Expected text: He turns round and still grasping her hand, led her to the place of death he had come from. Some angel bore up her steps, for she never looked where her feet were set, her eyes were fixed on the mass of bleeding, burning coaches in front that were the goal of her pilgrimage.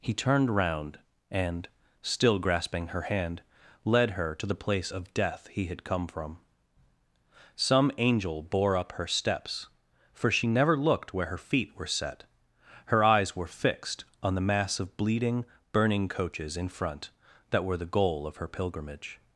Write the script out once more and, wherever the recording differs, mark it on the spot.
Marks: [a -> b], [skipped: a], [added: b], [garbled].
He [turns -> turned] round and still grasping her hand, led her to the place of death he had come from. Some angel bore up her steps, for she never looked where her feet were set, her eyes were fixed on the mass of bleeding, burning coaches in front that were the goal of her pilgrimage.